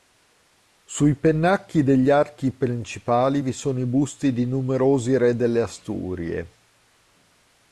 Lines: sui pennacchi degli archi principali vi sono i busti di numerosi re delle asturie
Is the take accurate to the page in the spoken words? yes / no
yes